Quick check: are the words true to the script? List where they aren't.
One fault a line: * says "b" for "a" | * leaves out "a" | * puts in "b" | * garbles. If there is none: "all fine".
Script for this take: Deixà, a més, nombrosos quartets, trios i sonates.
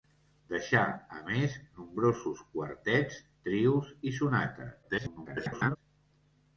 * garbles